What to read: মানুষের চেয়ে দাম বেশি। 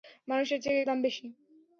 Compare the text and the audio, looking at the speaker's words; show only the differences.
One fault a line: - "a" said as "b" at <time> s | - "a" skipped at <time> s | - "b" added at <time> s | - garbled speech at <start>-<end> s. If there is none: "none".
none